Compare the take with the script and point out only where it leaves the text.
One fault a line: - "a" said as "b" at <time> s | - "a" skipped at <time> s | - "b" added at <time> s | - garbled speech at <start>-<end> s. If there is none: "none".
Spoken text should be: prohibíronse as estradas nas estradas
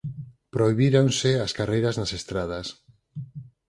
- "estradas" said as "carreiras" at 1.6 s